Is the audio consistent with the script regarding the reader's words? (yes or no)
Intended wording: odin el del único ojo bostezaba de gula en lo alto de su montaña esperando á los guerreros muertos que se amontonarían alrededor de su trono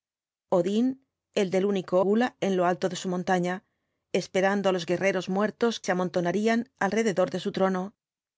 no